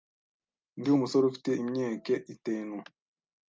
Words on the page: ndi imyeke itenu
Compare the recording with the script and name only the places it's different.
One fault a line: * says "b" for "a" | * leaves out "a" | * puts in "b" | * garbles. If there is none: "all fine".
* puts in "umusore ufite"